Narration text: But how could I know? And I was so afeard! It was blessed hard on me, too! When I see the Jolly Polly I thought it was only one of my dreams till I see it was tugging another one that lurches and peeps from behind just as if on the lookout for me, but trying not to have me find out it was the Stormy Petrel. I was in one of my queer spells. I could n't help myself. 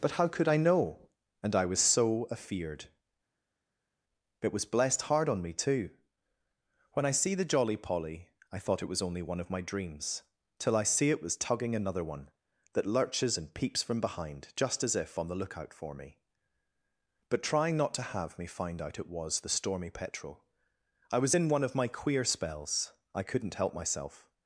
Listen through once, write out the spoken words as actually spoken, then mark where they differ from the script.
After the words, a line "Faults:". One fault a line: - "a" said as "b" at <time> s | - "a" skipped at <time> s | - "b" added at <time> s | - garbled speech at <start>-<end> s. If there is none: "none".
But how could I know? And I was so afeard! It was blessed hard on me, too! When I see the Jolly Polly I thought it was only one of my dreams till I see it was tugging another one that lurches and peeps from behind just as if on the lookout for me, but trying not to have me find out it was the Stormy Petrel. I was in one of my queer spells. I could n't help myself.
Faults:
none